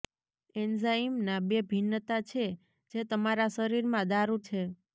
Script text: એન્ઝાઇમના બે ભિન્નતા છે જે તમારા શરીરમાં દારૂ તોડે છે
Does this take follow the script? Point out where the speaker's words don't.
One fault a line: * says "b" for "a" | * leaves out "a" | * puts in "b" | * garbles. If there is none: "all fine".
* leaves out "તોડે"